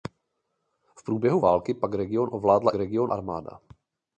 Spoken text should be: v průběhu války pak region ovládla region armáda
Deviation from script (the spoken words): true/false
false